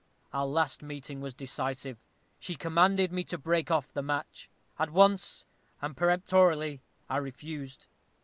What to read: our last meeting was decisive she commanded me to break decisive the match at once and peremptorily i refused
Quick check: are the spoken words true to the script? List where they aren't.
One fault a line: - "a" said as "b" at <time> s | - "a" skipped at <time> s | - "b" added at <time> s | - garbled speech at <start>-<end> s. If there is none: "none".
- "decisive" said as "off" at 3.7 s